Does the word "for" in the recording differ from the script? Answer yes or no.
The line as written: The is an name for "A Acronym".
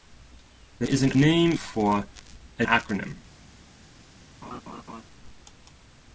no